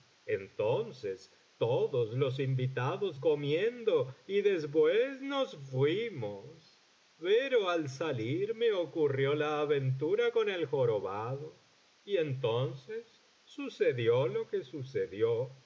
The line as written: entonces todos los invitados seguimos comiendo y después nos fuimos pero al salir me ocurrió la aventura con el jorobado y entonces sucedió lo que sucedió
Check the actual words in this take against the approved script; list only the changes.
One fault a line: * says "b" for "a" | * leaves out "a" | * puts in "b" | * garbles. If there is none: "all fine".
* leaves out "seguimos"